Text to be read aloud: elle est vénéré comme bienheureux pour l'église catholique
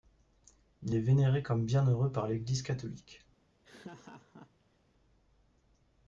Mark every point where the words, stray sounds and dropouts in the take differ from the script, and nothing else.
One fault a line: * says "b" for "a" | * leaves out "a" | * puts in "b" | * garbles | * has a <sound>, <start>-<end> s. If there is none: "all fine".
* says "il" for "elle"
* says "par" for "pour"
* has a laugh, 3.6-4.8 s